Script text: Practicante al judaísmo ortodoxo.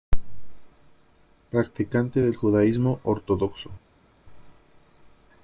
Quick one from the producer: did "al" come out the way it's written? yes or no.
no